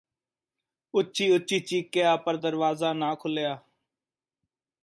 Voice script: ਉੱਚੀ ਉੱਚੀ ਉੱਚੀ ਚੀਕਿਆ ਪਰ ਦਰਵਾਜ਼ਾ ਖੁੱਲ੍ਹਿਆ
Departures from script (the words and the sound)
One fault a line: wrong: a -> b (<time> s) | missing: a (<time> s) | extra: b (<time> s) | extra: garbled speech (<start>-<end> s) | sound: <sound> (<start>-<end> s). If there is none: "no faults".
missing: ਉੱਚੀ (1.6 s)
extra: ਨਾ (2.9 s)